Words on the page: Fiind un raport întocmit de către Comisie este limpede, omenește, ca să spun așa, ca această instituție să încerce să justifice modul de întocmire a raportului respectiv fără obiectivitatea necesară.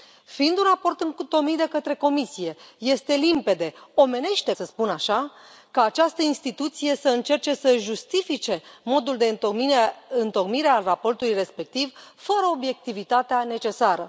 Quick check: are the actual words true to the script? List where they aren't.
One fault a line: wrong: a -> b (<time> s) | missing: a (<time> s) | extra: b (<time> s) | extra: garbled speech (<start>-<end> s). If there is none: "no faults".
missing: ca (4.5 s)